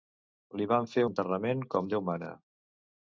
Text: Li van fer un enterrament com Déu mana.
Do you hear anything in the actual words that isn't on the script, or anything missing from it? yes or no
yes